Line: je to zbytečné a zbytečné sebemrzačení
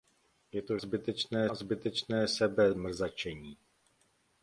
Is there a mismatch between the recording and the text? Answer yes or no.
no